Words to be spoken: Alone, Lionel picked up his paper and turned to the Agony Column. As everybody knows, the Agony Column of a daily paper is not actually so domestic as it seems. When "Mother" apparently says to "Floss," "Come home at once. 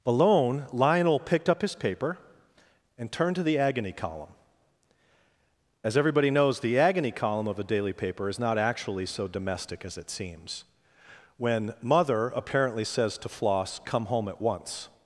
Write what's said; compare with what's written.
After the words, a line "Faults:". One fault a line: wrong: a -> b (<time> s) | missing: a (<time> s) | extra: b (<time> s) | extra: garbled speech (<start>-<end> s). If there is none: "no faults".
Alone, Lionel picked up his paper and turned to the Agony Column. As everybody knows, the Agony Column of a daily paper is not actually so domestic as it seems. When "Mother" apparently says to "Floss," "Come home at once.
Faults:
no faults